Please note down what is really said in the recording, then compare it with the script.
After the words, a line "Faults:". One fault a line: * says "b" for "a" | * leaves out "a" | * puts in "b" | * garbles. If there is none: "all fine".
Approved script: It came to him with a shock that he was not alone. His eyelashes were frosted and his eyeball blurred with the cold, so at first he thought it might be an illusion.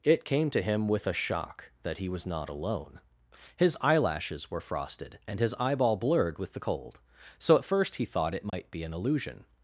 It came to him with a shock that he was not alone. His eyelashes were frosted and his eyeball blurred with the cold, so at first he thought it might be an illusion.
Faults:
all fine